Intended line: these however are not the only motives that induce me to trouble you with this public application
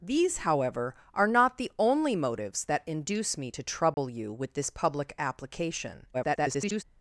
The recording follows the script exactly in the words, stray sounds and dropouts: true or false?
false